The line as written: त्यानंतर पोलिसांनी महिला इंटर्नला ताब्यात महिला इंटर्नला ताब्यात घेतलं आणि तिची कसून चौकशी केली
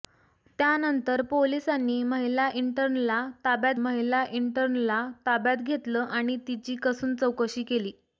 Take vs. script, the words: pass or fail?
pass